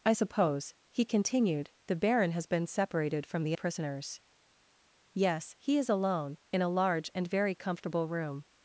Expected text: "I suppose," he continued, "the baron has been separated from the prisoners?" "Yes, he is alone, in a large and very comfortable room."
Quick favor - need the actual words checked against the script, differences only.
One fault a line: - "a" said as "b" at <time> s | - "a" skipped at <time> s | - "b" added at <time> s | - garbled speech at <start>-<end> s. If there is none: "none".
none